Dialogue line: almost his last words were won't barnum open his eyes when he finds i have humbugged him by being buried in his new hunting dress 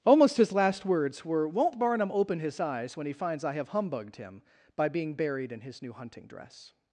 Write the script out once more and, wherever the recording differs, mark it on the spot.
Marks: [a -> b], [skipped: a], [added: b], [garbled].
almost his last words were won't barnum open his eyes when he finds i have humbugged him by being buried in his new hunting dress